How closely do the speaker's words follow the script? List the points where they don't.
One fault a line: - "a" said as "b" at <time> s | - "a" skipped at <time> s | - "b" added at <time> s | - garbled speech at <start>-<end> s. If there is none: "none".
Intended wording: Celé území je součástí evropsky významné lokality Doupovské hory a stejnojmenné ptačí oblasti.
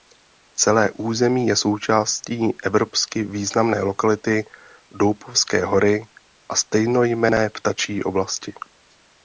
none